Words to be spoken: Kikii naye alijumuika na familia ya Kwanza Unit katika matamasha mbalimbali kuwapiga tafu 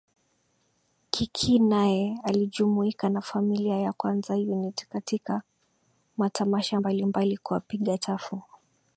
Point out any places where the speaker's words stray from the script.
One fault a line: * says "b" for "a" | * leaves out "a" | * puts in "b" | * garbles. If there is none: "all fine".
all fine